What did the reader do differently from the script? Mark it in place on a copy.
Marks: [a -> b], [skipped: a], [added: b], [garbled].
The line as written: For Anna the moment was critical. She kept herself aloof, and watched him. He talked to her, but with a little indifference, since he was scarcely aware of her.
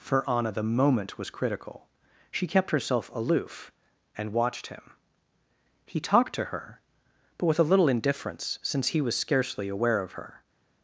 For Anna the moment was critical. She kept herself aloof, and watched him. He talked to her, but with a little indifference, since he was scarcely aware of her.